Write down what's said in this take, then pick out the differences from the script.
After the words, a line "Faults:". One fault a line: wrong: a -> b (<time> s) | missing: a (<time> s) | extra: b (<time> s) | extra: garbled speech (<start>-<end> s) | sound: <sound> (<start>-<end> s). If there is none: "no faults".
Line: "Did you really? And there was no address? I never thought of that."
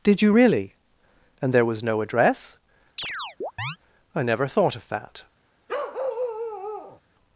"Did you really? And there was no address? I never thought of that."
Faults:
sound: chirp (3.0-3.8 s)
sound: bark (5.7-7.0 s)